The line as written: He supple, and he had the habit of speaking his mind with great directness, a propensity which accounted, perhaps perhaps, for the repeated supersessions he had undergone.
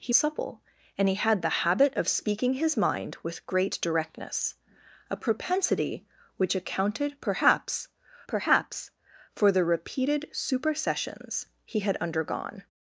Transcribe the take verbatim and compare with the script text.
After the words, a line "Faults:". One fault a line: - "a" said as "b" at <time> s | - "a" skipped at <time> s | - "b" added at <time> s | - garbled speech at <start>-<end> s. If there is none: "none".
He supple, and he had the habit of speaking his mind with great directness, a propensity which accounted, perhaps perhaps, for the repeated supersessions he had undergone.
Faults:
none